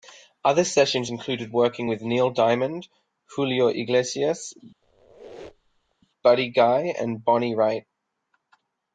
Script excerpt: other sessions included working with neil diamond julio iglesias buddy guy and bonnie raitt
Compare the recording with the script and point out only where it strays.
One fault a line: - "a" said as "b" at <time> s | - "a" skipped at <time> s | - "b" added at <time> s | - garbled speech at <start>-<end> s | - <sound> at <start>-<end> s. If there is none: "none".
- squeak at 4.8-5.9 s